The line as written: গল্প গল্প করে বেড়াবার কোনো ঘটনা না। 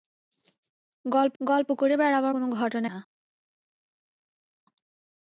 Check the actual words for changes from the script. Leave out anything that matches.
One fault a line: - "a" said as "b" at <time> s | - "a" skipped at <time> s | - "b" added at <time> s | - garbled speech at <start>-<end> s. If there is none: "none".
none